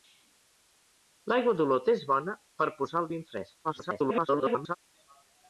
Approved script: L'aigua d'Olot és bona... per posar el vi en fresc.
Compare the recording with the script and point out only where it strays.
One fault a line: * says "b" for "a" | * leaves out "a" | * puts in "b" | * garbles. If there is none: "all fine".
* garbles